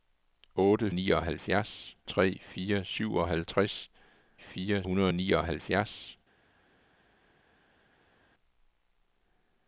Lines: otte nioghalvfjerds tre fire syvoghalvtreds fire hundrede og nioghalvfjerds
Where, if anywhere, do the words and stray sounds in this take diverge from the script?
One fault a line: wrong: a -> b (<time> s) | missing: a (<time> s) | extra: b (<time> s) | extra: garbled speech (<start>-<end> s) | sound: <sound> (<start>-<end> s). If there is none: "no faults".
no faults